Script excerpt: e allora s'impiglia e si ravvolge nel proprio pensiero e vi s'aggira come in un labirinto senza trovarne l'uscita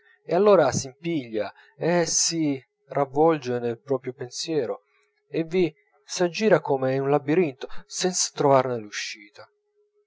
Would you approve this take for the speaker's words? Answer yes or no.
yes